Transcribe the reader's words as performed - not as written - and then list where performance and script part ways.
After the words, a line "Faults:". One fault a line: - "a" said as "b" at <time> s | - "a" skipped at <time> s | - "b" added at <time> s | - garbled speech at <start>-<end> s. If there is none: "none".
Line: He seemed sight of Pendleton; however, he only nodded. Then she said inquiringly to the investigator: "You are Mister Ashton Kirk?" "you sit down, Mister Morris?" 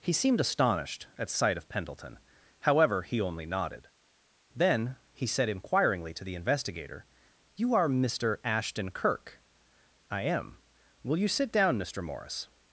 He seemed astonished at sight of Pendleton; however, he only nodded. Then he said inquiringly to the investigator: "You are Mister Ashton Kirk?" "I am. Will you sit down, Mister Morris?"
Faults:
- "astonished at" added at 0.4 s
- "she" said as "he" at 5.1 s
- "I am Will" added at 10.1 s